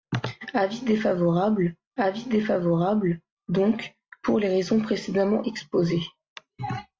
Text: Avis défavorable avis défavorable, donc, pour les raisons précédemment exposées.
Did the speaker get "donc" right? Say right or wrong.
right